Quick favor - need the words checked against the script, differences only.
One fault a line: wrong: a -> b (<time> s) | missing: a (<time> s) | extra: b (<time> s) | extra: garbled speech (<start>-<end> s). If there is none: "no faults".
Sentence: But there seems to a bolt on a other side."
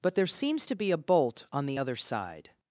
extra: be (0.8 s)
wrong: a -> the (1.7 s)